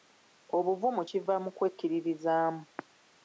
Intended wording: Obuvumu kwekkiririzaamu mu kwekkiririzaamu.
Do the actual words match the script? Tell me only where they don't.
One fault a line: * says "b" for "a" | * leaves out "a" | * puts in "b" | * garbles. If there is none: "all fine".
* says "kiva" for "kwekkiririzaamu"